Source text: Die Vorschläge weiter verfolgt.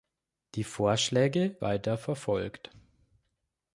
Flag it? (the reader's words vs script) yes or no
no